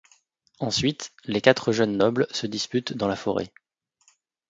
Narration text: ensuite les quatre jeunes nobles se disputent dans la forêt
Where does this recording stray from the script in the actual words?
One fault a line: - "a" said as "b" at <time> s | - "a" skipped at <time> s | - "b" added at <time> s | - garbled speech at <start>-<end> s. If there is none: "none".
none